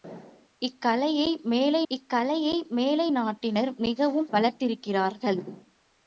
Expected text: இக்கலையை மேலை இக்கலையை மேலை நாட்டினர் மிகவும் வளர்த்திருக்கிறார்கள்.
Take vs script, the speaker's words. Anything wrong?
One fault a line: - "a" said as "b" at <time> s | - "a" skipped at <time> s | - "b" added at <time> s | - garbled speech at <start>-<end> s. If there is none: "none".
none